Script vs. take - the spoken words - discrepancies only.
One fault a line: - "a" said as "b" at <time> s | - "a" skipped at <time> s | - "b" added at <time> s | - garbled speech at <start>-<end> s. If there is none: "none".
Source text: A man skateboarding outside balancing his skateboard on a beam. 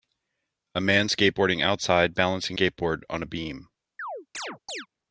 - "his" skipped at 2.6 s